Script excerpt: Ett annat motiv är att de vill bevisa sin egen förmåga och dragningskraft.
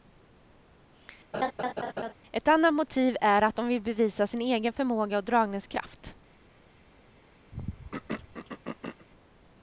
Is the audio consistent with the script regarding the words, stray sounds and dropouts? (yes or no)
no